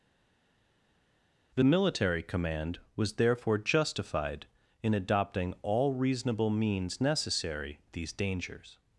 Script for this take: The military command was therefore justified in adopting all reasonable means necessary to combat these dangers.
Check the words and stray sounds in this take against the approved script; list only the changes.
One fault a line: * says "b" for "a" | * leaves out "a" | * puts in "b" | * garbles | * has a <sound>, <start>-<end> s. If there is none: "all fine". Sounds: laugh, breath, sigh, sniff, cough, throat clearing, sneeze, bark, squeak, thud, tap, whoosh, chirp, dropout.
* leaves out "to combat"